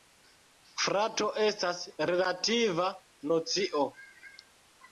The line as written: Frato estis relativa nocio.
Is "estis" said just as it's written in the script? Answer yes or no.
no